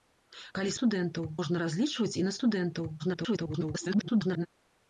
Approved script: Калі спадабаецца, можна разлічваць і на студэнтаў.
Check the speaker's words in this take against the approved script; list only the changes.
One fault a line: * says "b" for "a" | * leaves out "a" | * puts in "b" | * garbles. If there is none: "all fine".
* says "студэнтаў" for "спадабаецца"
* garbles